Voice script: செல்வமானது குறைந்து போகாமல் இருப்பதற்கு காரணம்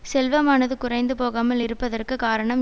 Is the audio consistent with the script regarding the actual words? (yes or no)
yes